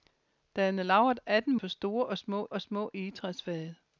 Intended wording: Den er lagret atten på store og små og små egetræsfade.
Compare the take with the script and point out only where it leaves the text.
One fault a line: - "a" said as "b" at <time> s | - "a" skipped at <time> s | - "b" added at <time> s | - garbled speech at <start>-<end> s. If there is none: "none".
none